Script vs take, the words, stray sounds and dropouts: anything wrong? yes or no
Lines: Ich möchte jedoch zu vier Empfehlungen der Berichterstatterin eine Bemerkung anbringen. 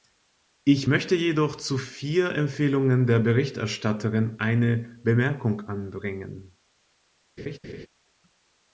yes